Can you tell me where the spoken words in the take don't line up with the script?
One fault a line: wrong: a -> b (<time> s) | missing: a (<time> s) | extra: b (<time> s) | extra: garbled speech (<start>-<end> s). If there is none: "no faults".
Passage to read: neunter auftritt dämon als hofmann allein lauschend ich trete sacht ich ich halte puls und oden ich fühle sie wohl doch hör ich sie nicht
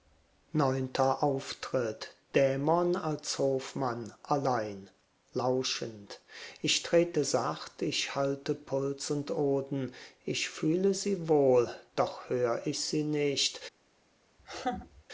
missing: ich (8.2 s)